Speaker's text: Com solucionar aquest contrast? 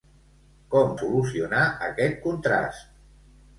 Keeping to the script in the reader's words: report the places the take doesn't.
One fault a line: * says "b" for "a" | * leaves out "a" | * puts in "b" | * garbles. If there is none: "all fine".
all fine